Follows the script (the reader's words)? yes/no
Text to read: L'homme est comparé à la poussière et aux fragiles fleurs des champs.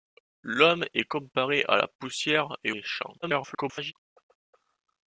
no